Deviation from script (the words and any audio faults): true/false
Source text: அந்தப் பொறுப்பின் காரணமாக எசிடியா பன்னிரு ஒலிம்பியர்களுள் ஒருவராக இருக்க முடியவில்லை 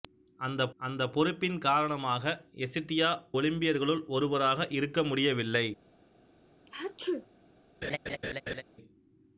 true